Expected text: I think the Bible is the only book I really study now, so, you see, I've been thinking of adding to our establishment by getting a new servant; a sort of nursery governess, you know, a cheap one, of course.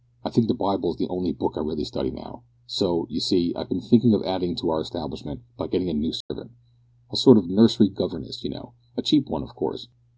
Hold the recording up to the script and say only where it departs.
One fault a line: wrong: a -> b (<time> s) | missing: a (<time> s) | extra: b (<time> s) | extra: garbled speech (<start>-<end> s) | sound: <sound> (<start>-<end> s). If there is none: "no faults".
sound: dropout (6.2-6.3 s)